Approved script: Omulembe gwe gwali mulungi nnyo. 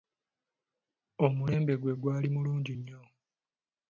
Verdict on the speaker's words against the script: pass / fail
pass